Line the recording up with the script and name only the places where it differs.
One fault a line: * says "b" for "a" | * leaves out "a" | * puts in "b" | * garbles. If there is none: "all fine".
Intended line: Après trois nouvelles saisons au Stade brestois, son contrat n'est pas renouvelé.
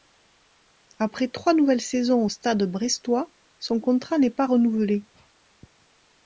all fine